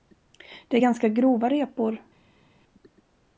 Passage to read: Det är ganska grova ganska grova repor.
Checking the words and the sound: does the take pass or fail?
fail